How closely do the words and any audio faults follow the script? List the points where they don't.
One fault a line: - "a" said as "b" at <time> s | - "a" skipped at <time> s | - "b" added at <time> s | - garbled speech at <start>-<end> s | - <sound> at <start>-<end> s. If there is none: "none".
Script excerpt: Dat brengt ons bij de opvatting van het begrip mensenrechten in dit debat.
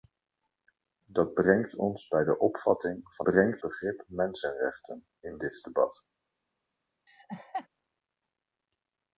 - "het" said as "brengt" at 3.2 s
- laugh at 7.1-7.7 s